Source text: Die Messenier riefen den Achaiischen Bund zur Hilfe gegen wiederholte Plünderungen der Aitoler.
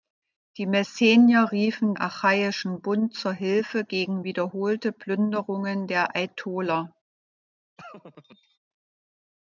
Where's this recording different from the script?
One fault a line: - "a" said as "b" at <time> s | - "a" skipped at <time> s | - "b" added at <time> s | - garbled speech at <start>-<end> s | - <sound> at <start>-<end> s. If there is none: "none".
- "den" skipped at 1.9 s
- laugh at 7.8-8.6 s